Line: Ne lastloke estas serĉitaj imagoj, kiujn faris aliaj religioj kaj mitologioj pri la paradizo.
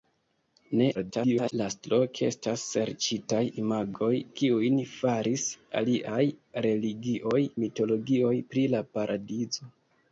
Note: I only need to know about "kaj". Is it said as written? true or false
false